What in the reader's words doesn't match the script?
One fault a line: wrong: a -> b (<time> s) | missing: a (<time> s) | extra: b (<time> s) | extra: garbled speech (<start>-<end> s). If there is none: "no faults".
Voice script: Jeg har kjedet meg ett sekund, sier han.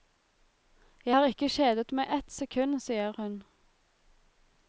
extra: ikke (1.3 s)
wrong: han -> hun (3.2 s)